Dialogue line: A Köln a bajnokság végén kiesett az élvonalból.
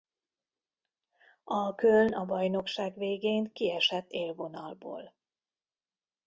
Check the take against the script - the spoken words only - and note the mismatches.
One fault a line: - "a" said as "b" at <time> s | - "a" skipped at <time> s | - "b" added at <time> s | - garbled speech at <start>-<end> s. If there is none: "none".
- "az" skipped at 4.1 s